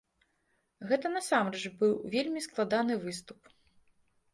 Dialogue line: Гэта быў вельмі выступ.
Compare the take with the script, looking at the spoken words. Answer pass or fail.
fail